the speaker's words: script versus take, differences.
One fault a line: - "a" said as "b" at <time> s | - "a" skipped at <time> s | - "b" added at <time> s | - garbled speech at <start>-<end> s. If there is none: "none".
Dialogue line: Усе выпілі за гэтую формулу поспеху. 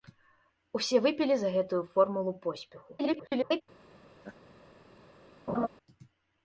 - garbled speech at 3.0-3.6 s